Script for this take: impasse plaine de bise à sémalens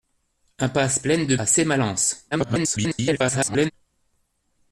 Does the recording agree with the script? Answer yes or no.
no